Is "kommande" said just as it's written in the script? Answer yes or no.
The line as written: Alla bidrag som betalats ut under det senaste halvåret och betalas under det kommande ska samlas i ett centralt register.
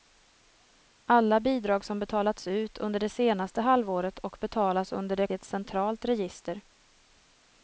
no